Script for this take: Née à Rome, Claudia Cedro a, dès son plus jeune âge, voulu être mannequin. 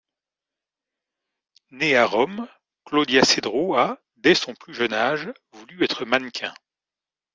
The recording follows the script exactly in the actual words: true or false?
true